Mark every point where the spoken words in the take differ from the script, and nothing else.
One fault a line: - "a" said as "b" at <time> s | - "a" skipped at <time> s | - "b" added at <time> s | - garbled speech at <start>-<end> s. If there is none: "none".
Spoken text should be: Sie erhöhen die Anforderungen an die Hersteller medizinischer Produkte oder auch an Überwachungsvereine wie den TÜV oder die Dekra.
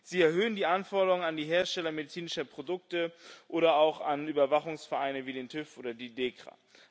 none